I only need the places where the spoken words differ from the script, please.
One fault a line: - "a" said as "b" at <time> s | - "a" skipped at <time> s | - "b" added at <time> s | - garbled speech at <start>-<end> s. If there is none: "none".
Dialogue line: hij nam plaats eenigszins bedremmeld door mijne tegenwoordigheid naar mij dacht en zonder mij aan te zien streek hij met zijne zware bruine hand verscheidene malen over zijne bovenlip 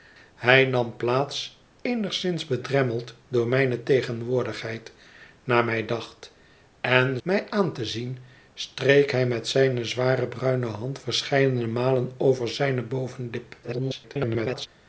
- "zonder" skipped at 7.2 s
- garbled speech at 13.6-14.7 s